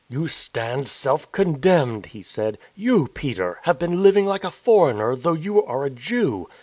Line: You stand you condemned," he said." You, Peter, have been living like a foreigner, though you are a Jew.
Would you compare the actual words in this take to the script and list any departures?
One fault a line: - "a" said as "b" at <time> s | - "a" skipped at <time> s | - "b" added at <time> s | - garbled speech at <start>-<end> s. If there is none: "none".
- "you" said as "self" at 0.9 s